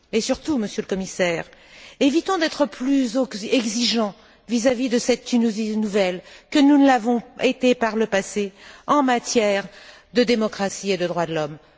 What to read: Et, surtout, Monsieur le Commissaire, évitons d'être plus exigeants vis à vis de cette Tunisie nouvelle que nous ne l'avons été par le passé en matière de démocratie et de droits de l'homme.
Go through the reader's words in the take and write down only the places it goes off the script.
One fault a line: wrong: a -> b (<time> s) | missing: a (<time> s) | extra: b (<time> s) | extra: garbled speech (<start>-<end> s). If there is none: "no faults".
no faults